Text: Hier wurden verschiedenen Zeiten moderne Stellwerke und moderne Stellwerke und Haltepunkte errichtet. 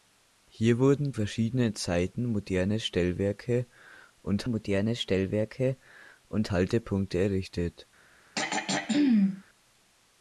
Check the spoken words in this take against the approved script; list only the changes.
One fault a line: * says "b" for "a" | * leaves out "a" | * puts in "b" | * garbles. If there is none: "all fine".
all fine